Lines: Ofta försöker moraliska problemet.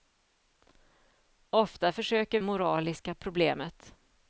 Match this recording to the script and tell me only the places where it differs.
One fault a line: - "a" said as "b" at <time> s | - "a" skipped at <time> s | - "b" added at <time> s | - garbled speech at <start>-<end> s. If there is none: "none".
none